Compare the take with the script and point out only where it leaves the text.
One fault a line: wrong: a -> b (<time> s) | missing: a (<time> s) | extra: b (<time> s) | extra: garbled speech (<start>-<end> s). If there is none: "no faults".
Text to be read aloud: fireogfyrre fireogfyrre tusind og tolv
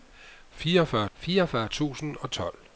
no faults